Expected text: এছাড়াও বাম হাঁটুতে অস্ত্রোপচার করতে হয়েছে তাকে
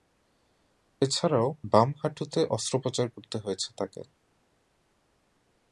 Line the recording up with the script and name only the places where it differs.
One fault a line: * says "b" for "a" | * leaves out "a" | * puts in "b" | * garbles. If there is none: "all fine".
all fine